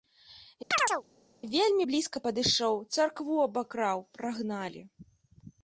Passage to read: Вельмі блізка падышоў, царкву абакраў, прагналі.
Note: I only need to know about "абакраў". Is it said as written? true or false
true